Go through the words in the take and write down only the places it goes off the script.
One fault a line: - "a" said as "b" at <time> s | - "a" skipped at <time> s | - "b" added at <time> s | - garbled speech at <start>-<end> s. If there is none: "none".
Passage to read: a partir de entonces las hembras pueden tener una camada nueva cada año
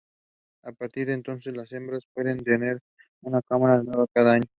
none